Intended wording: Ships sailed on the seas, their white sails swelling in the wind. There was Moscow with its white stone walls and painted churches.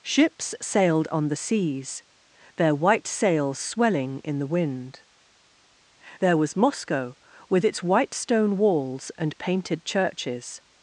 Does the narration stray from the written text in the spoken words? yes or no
no